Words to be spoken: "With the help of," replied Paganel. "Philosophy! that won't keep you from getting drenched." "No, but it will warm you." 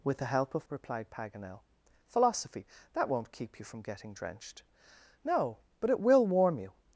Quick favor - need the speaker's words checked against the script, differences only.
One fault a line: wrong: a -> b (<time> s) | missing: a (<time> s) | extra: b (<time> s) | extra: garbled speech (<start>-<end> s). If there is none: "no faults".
no faults